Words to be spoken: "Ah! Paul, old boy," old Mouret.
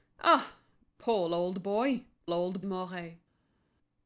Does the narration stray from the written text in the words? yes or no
no